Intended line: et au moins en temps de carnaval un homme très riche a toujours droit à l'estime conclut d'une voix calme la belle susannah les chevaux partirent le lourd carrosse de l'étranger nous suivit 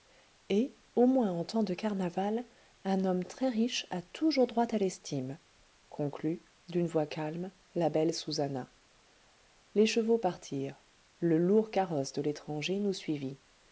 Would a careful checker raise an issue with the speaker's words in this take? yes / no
no